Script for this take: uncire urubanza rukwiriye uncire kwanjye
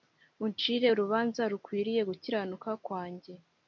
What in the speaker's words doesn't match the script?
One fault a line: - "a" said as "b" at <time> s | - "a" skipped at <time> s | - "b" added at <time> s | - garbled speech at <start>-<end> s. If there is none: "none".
- "uncire" said as "gukiranuka" at 2.1 s